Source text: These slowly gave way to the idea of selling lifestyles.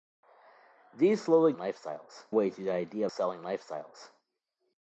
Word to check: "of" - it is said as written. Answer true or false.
false